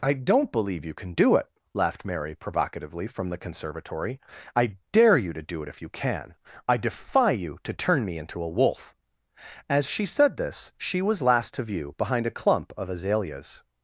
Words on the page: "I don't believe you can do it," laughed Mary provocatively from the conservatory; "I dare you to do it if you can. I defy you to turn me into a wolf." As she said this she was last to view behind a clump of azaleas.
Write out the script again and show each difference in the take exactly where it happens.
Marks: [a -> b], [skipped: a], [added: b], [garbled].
"I don't believe you can do it," laughed Mary provocatively from the conservatory; "I dare you to do it if you can. I defy you to turn me into a wolf." As she said this she was last to view behind a clump of azaleas.